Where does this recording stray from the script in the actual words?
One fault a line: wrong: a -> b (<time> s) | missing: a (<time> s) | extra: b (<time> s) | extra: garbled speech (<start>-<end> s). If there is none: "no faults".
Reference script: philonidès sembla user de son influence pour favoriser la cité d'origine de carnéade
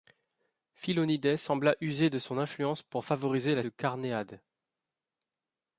missing: cité d'origine (3.6 s)